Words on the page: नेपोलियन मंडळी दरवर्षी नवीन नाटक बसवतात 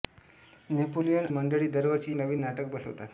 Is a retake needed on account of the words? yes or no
no